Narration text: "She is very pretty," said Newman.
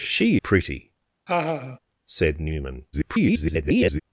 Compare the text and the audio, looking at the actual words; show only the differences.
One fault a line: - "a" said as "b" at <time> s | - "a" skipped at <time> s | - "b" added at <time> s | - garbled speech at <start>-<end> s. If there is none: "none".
- "is very" skipped at 0.4 s
- garbled speech at 2.9-4.0 s